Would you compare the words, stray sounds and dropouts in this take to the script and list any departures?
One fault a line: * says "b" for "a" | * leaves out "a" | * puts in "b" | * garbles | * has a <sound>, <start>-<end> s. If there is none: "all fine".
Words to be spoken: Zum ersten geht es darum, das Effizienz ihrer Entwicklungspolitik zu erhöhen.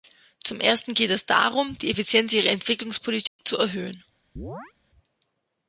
* says "die" for "das"
* has a dropout, 3.3-3.4 s
* has a chirp, 4.4-4.7 s